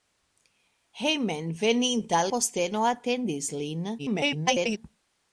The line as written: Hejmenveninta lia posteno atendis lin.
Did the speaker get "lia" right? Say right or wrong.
wrong